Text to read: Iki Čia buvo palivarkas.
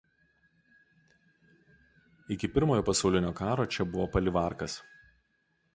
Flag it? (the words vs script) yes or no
yes